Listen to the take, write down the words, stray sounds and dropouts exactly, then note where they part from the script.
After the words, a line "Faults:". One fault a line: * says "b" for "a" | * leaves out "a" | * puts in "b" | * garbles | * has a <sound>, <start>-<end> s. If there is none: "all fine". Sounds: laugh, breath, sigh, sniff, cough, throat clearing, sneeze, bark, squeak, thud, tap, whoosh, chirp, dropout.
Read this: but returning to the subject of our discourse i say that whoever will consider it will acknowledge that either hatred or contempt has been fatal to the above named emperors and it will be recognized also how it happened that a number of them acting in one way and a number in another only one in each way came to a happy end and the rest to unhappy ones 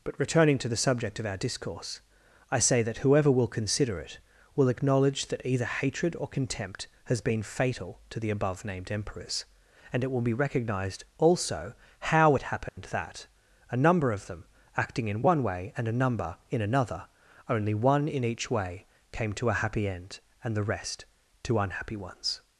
but returning to the subject of our discourse i say that whoever will consider it will acknowledge that either hatred or contempt has been fatal to the above named emperors and it will be recognized also how it happened that a number of them acting in one way and a number in another only one in each way came to a happy end and the rest to unhappy ones
Faults:
* has a dropout, 12.7-12.8 s